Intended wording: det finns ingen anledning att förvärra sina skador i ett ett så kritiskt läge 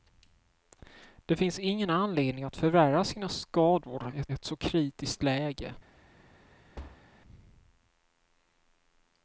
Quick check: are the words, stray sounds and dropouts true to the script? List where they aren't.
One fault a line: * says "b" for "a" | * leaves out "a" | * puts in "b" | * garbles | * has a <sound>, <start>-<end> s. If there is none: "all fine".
* has a thud, 6.8-7.1 s